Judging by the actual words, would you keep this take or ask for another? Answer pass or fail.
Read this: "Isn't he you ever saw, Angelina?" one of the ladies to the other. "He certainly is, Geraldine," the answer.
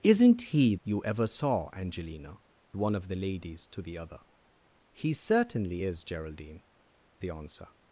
pass